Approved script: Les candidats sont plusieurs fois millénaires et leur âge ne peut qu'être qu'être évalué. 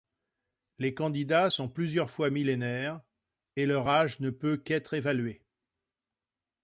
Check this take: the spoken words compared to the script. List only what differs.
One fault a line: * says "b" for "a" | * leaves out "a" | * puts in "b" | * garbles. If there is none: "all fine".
* leaves out "qu'être"